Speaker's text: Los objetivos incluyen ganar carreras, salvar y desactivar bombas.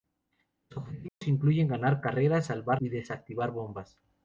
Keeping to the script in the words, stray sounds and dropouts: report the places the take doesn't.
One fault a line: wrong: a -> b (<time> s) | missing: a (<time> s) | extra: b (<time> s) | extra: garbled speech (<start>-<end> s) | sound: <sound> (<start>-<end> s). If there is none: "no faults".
sound: dropout (1.1-1.2 s)